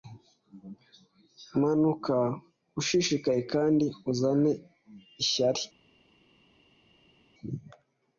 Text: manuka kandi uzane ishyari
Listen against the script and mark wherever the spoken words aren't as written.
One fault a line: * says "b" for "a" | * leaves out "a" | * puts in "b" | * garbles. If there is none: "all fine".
* puts in "ushishikaye"